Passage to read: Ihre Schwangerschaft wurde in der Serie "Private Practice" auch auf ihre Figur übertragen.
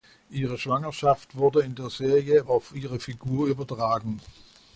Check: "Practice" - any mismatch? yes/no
yes